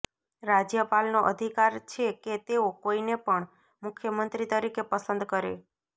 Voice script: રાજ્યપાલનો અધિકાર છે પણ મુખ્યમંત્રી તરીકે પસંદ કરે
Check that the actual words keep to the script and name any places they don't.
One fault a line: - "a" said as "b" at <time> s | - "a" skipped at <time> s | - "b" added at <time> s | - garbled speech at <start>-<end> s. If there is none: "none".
- "કે તેઓ કોઈને" added at 2.2 s